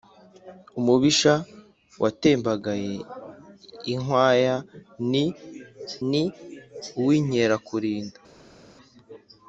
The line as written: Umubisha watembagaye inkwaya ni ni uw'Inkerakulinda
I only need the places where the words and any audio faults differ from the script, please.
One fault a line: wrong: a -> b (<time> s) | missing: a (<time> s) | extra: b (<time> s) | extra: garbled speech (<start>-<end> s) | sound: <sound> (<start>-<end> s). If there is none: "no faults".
no faults